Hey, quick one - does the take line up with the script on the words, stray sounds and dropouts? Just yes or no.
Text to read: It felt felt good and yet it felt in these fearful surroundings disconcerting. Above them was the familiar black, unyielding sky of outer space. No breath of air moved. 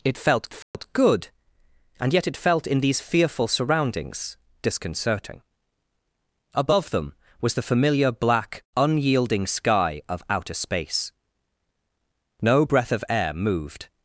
no